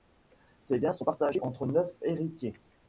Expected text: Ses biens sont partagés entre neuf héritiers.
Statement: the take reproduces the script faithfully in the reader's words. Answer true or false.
true